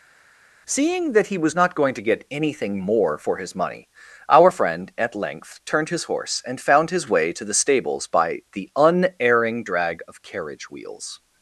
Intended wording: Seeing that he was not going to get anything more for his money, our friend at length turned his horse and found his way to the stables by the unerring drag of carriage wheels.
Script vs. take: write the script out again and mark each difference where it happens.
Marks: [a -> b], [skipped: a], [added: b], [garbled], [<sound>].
Seeing that he was not going to get anything more for his money, our friend at length turned his horse and found his way to the stables by the unerring drag of carriage wheels.